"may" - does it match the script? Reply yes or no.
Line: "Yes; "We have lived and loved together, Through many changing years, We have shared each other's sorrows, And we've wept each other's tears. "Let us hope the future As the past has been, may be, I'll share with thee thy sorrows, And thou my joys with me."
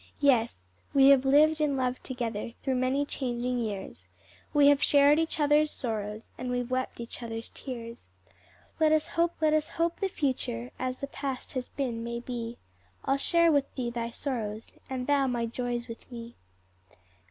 yes